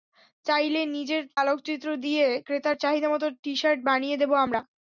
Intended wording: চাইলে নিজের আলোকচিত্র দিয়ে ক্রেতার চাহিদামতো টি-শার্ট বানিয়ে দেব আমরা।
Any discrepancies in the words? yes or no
no